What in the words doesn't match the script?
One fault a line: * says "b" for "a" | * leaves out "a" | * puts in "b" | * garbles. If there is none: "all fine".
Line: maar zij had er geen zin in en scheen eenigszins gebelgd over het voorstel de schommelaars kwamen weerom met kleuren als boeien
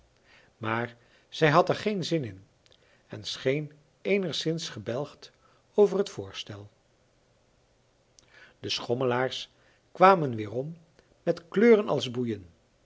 all fine